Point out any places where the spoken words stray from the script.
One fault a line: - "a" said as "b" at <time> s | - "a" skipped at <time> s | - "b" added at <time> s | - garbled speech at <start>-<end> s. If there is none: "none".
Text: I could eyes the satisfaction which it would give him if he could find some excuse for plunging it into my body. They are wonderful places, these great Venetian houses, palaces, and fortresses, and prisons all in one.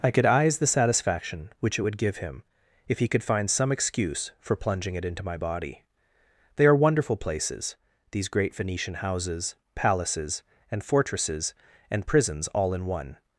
none